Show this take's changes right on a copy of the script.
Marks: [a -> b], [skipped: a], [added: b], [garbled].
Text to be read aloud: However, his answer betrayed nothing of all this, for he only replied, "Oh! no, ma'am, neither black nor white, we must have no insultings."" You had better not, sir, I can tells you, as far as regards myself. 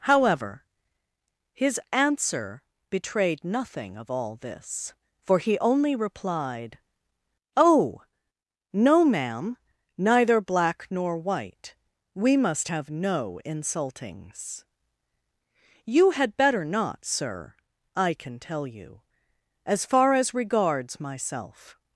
However, his answer betrayed nothing of all this, for he only replied, "Oh! no, ma'am, neither black nor white, we must have no insultings."" You had better not, sir, I can [tells -> tell] you, as far as regards myself.